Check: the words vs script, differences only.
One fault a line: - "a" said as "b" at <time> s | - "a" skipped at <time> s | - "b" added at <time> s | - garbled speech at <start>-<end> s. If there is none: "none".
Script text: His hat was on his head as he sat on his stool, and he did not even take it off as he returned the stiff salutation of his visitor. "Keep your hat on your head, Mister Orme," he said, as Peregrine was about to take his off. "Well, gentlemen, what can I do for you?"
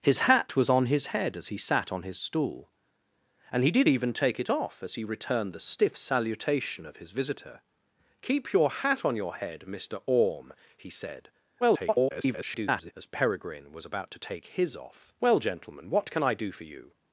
- "not" skipped at 3.9 s
- garbled speech at 11.6-12.9 s